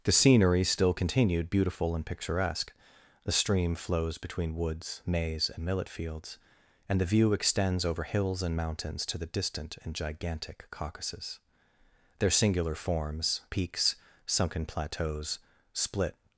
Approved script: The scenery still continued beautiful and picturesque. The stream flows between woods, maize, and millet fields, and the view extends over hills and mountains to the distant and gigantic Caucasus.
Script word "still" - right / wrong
right